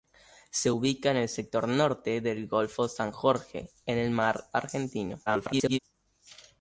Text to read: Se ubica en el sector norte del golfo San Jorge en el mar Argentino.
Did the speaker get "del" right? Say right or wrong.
right